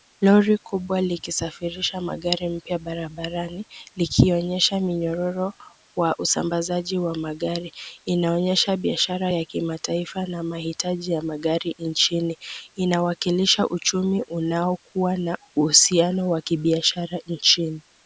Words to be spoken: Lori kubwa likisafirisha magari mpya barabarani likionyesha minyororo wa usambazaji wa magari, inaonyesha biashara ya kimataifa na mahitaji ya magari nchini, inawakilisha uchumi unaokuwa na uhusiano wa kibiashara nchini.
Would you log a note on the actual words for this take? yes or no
no